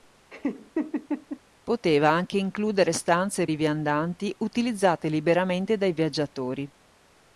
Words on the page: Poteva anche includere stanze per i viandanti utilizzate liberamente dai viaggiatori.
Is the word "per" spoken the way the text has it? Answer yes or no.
no